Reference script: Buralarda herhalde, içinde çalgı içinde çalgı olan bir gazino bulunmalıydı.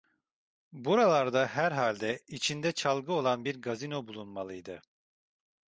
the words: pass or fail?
fail